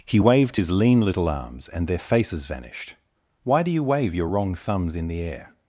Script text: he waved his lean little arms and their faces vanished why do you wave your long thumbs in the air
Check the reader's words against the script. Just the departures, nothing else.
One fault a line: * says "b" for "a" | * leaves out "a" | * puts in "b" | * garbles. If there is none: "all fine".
* says "wrong" for "long"